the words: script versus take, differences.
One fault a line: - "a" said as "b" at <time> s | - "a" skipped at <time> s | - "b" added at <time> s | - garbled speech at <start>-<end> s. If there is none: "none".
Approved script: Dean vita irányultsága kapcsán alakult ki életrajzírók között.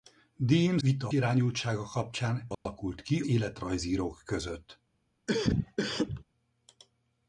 none